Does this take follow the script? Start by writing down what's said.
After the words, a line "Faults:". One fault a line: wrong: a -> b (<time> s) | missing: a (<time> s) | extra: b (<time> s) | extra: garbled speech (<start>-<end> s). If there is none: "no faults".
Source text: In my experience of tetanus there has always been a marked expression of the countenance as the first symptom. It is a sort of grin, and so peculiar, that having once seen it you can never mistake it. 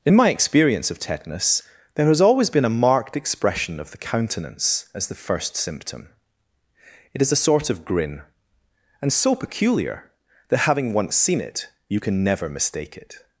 In my experience of tetanus there has always been a marked expression of the countenance as the first symptom. It is a sort of grin, and so peculiar, that having once seen it you can never mistake it.
Faults:
no faults